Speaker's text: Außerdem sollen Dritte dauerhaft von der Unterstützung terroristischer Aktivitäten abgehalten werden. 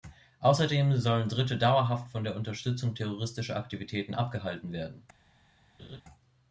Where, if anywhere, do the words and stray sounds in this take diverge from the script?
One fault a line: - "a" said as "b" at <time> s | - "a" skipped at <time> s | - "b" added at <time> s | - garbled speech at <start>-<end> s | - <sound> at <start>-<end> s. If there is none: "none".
- laugh at 5.8-6.0 s